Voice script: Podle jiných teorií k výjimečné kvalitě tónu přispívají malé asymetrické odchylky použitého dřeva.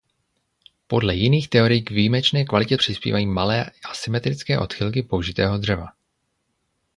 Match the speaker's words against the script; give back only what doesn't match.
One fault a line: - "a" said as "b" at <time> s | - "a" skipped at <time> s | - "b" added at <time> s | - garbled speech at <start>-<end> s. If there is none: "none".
- "tónu" skipped at 2.8 s